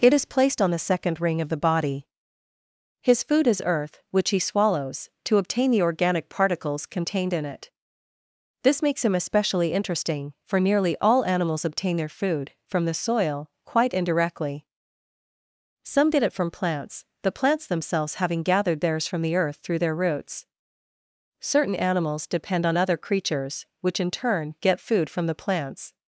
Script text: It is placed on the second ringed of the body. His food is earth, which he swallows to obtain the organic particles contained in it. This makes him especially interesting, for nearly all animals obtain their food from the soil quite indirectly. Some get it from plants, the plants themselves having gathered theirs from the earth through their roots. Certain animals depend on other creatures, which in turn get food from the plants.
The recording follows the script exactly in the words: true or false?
false